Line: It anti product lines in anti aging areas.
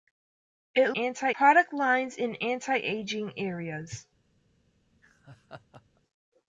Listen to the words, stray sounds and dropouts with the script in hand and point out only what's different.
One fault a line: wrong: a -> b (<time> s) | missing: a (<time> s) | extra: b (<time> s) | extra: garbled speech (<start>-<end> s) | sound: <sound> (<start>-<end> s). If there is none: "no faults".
sound: laugh (4.9-6.0 s)